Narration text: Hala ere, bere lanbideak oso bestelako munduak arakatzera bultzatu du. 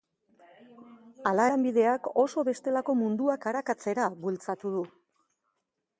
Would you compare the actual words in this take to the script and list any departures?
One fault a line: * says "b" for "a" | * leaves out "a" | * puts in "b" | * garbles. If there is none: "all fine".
* leaves out "ere bere"